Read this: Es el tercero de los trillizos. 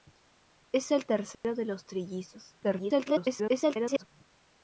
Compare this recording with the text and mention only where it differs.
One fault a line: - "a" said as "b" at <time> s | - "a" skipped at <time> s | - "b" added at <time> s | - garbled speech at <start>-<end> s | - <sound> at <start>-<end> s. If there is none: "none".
- dropout at 1.3-1.4 s
- garbled speech at 2.6-4.0 s